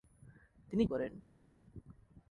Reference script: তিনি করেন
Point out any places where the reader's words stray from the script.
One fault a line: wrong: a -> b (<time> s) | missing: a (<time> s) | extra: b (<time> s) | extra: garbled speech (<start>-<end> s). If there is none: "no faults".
no faults